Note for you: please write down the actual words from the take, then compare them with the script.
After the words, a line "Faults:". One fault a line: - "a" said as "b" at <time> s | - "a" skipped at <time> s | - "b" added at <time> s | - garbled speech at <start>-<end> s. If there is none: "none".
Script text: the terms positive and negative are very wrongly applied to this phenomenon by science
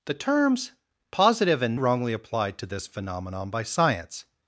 the terms positive and wrongly applied to this phenomenon by science
Faults:
- "negative are very" skipped at 1.8 s